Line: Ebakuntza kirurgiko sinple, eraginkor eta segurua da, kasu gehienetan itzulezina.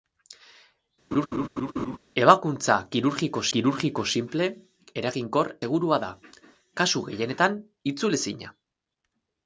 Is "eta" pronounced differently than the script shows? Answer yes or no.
yes